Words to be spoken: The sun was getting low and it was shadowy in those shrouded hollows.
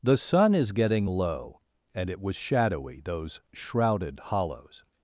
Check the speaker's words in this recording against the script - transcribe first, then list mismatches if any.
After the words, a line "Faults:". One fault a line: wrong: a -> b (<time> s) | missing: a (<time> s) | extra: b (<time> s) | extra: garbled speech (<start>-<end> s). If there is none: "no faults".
The sun is getting low and it was shadowy those shrouded hollows.
Faults:
wrong: was -> is (0.6 s)
missing: in (3.0 s)